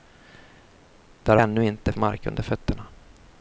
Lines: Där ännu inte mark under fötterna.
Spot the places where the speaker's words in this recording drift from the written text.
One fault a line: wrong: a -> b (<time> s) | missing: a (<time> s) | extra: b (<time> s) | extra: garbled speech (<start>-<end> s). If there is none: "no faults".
no faults